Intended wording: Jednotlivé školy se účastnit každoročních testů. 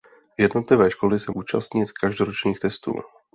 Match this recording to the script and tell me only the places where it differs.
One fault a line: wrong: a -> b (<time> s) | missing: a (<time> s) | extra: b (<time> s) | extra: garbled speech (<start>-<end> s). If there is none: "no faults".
no faults